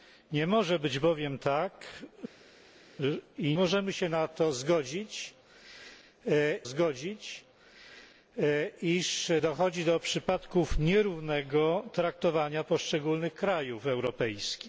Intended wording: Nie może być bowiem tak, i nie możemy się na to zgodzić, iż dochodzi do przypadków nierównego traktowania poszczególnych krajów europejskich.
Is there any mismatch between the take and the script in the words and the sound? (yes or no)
yes